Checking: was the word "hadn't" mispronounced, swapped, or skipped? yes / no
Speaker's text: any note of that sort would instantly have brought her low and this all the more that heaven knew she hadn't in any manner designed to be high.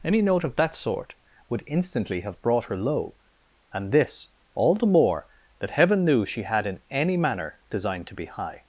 yes